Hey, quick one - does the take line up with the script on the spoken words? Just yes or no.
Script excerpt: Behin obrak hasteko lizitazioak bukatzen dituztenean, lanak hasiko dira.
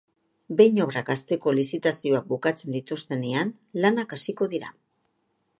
yes